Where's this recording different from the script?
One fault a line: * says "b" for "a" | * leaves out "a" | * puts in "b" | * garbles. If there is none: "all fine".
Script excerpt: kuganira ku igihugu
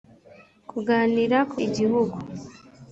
all fine